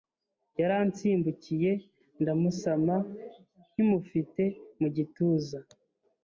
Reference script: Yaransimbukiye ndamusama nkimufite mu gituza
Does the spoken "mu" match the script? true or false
true